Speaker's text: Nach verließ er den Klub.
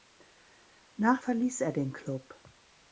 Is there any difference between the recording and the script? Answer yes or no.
no